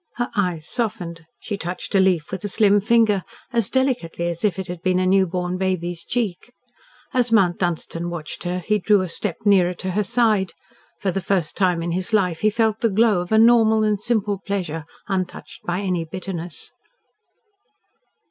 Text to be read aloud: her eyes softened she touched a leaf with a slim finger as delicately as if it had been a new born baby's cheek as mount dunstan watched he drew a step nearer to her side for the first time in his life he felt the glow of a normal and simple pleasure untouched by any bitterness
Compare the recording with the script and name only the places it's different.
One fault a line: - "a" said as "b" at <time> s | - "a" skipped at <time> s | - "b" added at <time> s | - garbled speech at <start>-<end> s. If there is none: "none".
- "her" added at 8.4 s